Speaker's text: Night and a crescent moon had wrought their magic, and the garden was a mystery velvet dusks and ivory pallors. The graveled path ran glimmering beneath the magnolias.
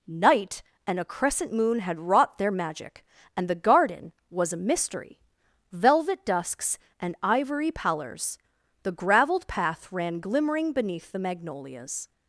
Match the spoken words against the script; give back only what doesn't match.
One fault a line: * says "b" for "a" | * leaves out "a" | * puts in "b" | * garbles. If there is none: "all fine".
all fine